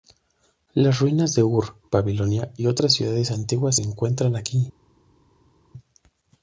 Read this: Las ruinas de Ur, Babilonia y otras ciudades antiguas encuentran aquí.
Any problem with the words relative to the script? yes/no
no